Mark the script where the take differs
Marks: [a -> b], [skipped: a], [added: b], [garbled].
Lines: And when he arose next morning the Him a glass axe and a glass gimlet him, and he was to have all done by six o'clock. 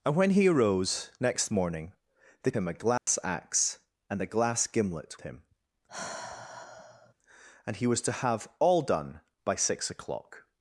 And when he arose next morning the Him a glass axe and a glass gimlet him, and he was to have all done by six o'clock.